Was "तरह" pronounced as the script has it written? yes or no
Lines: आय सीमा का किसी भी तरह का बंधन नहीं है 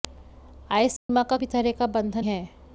yes